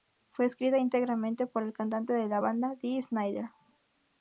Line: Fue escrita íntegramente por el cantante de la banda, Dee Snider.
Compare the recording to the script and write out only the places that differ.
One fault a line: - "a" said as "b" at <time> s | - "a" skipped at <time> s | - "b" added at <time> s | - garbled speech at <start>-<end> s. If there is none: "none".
none